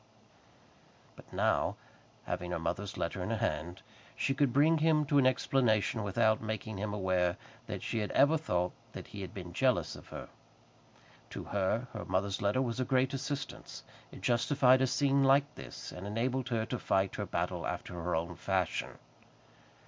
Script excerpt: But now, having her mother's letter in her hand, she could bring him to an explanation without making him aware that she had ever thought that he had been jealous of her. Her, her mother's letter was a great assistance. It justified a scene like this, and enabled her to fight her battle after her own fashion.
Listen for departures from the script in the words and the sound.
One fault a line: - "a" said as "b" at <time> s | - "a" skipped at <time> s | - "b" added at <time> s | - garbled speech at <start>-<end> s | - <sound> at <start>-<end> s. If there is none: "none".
- "To" added at 11.3 s